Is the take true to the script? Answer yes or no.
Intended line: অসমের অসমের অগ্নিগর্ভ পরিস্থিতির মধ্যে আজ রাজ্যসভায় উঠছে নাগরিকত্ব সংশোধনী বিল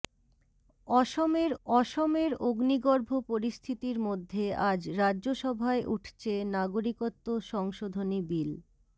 yes